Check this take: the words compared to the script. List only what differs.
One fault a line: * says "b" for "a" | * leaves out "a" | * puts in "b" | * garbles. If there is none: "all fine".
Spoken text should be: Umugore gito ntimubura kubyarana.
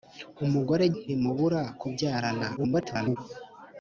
* leaves out "gito"
* garbles